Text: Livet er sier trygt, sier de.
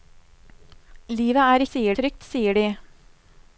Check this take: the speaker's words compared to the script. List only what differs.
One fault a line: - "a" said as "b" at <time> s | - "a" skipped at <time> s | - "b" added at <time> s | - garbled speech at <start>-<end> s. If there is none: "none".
none